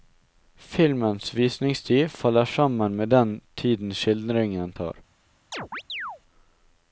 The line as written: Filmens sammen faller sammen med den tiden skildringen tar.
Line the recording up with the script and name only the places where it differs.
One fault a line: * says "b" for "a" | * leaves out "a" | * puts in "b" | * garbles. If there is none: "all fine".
* says "visningstid" for "sammen"